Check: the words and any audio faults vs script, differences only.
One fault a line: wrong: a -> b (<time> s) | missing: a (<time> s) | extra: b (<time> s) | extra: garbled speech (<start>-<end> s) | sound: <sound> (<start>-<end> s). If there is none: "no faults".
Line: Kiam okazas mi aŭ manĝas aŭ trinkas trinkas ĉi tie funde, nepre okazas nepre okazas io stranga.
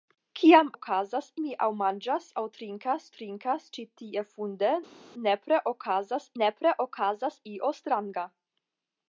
no faults